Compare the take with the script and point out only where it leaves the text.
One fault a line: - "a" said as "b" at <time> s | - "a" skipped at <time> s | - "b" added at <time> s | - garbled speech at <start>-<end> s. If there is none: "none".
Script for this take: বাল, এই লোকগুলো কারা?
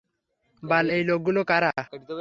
none